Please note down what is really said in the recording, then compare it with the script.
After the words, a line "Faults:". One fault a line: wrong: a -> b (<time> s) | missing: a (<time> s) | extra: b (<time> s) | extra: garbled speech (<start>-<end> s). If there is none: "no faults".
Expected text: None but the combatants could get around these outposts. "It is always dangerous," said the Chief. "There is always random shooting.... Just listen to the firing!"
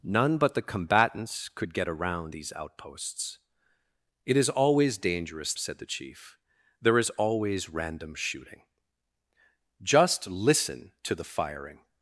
None but the combatants could get around these outposts. "It is always dangerous," said the Chief. "There is always random shooting.... Just listen to the firing!"
Faults:
no faults